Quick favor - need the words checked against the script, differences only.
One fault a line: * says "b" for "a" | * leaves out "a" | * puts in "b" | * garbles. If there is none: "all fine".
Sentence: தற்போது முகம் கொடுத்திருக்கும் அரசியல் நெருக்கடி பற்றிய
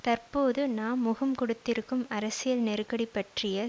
* puts in "நாம்"